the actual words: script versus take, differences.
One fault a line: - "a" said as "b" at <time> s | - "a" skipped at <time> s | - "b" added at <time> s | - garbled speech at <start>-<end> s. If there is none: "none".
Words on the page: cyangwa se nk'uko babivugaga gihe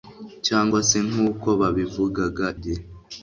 none